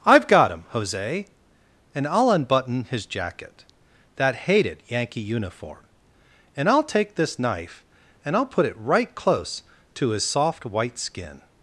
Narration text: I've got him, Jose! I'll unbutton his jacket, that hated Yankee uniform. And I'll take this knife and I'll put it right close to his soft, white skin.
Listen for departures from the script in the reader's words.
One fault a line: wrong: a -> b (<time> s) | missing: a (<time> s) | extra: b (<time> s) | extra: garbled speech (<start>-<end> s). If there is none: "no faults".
extra: And (1.9 s)